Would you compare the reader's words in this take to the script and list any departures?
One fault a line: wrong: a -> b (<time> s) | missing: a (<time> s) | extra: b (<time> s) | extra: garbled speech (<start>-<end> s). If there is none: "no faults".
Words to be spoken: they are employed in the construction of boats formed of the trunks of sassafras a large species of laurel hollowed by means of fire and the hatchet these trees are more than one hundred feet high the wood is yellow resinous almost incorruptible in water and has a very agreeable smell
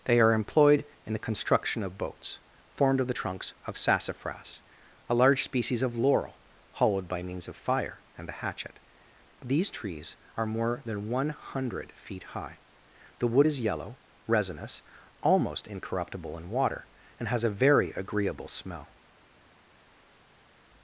no faults